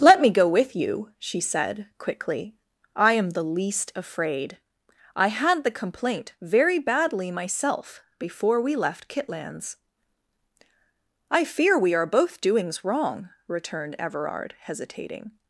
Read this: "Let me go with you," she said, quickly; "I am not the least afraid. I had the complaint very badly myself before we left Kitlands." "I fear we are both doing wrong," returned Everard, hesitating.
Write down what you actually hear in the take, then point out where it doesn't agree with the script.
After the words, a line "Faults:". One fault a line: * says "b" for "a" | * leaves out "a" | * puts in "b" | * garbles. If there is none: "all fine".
"Let me go with you," she said, quickly; "I am the least afraid. I had the complaint very badly myself before we left Kitlands." "I fear we are both doings wrong," returned Everard, hesitating.
Faults:
* leaves out "not"
* says "doings" for "doing"